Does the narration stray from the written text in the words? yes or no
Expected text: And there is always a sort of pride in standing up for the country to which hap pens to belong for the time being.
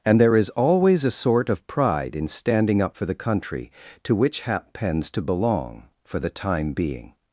no